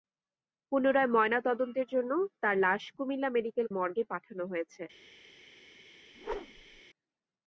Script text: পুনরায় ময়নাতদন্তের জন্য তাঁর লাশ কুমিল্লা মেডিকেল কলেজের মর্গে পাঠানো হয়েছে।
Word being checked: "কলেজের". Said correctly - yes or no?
no